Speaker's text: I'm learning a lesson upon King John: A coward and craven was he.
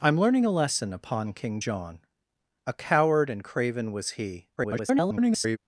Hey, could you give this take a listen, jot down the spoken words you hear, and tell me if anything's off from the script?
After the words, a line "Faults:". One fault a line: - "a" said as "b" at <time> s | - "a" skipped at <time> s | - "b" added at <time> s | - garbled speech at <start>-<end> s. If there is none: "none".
I'm learning a lesson upon King John: A coward and craven was he. [garbled]
Faults:
- garbled speech at 4.6-5.6 s